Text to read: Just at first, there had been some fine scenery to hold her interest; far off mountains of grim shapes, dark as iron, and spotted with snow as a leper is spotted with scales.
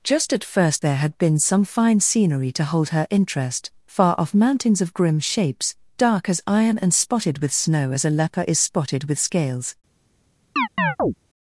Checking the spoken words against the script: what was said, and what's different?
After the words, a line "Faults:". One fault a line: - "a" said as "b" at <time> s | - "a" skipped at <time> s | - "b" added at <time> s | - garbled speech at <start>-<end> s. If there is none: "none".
Just at first, there had been some fine scenery to hold her interest; far off mountains of grim shapes, dark as iron, and spotted with snow as a leper is spotted with scales.
Faults:
none